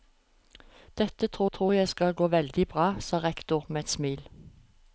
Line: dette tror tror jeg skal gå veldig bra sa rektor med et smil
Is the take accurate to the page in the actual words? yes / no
yes